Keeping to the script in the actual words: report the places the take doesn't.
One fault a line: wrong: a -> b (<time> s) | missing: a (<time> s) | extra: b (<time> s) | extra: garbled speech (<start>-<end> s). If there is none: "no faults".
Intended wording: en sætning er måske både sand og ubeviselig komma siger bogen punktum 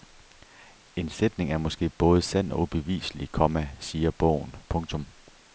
no faults